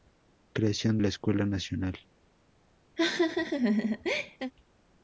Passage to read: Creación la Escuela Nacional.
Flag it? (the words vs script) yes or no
no